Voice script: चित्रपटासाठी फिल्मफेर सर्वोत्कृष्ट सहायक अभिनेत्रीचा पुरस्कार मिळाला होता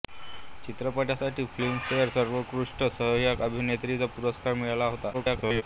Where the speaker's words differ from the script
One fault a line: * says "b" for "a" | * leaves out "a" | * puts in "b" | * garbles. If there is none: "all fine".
* garbles